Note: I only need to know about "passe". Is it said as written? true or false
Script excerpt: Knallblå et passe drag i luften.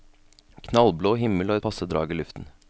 true